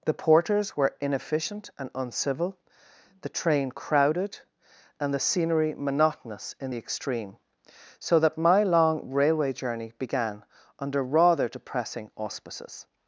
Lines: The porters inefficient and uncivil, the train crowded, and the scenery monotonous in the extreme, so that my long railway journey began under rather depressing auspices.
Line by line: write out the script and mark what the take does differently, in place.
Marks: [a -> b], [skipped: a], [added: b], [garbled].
The porters [added: were] inefficient and uncivil, the train crowded, and the scenery monotonous in the extreme, so that my long railway journey began under rather depressing auspices.